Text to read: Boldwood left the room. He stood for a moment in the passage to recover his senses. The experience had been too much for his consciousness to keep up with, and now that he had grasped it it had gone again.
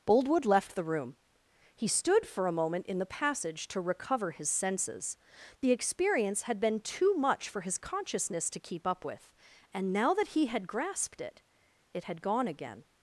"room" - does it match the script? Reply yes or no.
yes